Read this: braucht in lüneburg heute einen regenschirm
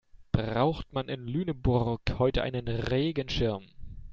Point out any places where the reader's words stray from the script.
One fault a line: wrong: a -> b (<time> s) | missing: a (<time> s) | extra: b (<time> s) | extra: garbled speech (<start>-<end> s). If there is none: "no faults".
extra: man (0.9 s)